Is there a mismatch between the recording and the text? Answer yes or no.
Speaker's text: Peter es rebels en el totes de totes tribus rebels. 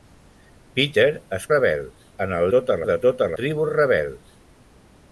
no